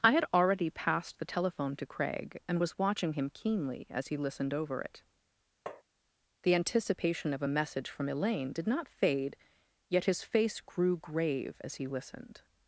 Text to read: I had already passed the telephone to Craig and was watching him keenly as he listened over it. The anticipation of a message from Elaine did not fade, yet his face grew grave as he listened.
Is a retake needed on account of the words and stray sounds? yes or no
yes